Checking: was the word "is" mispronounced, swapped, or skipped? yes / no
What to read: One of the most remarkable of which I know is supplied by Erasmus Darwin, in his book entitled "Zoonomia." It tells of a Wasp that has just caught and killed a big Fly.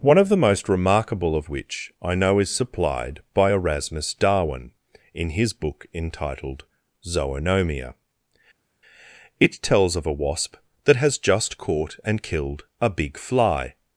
no